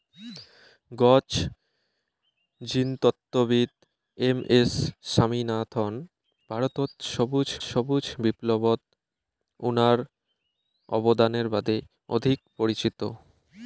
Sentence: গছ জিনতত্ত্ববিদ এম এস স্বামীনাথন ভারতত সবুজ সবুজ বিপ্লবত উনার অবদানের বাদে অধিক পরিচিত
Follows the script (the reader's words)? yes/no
yes